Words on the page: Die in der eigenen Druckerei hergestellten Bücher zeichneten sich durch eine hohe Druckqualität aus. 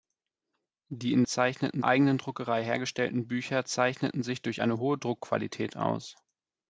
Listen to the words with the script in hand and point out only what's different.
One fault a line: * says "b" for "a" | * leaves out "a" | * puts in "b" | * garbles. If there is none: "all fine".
* says "zeichneten" for "der"